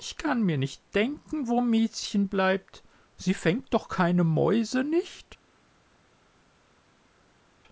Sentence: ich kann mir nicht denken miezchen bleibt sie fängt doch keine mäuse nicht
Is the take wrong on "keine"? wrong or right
right